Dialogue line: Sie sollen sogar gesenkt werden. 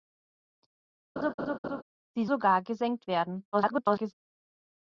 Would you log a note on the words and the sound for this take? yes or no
yes